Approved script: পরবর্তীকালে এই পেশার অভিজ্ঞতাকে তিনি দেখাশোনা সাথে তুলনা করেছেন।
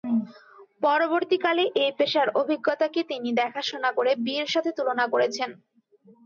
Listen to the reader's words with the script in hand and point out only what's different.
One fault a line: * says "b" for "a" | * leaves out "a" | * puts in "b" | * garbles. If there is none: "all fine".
* puts in "করে বিয়ের"